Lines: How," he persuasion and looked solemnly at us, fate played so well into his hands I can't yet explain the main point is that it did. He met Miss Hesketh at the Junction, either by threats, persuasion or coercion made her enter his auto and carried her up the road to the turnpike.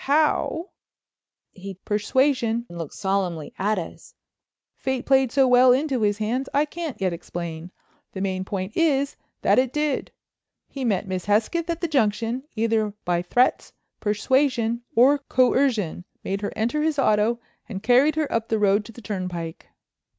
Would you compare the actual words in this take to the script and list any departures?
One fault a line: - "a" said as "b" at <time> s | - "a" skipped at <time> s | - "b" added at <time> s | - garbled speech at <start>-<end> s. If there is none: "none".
none